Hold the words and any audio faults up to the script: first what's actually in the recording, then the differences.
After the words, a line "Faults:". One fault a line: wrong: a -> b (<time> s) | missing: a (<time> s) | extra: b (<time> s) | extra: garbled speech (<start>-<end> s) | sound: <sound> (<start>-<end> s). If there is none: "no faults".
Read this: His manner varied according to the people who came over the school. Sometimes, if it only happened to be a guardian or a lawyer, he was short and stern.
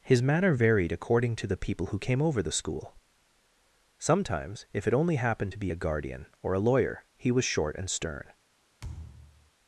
His manner varied according to the people who came over the school. Sometimes, if it only happened to be a guardian or a lawyer, he was short and stern.
Faults:
sound: thud (8.8-9.5 s)